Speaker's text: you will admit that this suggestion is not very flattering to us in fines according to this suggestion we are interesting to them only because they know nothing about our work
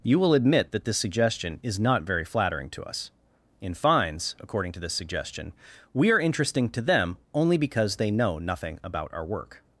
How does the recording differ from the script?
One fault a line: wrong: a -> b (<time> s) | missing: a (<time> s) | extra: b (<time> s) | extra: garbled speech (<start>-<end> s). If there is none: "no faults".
no faults